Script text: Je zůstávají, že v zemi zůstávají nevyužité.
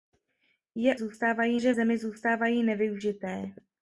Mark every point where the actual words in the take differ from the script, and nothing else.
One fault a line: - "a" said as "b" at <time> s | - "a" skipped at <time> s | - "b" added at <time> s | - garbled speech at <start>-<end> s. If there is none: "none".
none